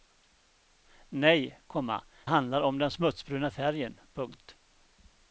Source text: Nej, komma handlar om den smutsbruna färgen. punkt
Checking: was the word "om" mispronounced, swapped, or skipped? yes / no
no